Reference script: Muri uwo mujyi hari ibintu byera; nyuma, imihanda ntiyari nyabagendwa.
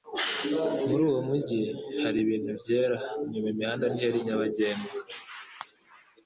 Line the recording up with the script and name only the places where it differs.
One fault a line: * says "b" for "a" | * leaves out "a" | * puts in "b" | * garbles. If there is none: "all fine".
all fine